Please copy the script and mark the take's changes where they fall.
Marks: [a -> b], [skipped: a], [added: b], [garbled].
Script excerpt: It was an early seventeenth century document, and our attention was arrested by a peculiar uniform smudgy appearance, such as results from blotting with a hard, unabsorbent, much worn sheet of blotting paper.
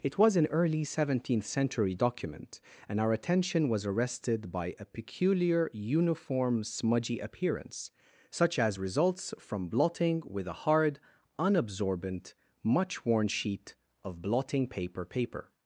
It was an early seventeenth century document, and our attention was arrested by a peculiar uniform smudgy appearance, such as results from blotting with a hard, unabsorbent, much worn sheet of blotting paper. [added: paper]